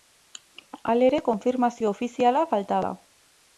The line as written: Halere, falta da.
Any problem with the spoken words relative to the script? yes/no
yes